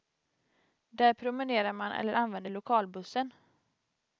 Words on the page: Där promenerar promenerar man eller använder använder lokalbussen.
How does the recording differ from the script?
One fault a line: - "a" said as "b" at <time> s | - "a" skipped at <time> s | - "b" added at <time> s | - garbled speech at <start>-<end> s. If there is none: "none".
- "promenerar" skipped at 1.7 s
- "använder" skipped at 2.5 s